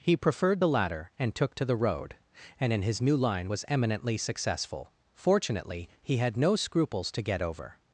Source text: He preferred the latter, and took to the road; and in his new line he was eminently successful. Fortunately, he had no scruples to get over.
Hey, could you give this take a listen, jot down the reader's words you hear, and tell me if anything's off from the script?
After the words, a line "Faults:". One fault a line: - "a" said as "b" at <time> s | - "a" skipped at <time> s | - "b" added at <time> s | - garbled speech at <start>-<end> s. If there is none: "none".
He preferred the latter, and took to the road; and in his new line was eminently successful. Fortunately, he had no scruples to get over.
Faults:
- "he" skipped at 3.5 s